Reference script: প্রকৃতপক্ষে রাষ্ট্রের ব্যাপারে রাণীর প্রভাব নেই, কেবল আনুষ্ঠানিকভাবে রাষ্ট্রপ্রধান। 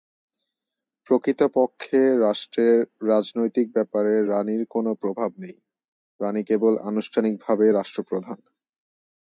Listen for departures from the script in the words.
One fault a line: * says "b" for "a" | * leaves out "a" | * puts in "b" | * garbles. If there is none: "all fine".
* puts in "রাজনৈতিক"
* puts in "কোন"
* puts in "রাণী"